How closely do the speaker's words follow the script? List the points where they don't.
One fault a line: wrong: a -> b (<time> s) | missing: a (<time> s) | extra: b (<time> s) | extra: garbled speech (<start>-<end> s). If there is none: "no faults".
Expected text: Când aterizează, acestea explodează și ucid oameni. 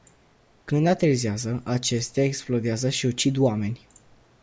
no faults